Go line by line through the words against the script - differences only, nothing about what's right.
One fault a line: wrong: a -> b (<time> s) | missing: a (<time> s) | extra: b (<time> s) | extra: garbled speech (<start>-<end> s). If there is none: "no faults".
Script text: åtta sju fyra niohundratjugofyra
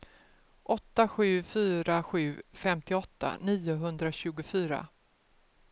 extra: sju femtioåtta (2.0 s)